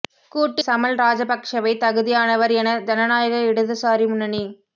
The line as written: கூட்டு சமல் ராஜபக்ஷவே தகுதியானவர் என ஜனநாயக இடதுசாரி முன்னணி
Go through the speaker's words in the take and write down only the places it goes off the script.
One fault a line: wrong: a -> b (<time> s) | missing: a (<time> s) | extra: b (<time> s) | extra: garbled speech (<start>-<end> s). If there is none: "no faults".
no faults